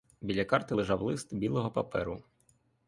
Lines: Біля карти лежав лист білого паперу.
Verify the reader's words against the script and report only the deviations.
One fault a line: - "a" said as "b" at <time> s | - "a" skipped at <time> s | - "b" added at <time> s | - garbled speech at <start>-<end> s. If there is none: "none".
none